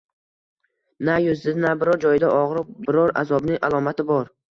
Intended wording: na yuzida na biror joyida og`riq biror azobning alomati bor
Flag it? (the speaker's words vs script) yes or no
no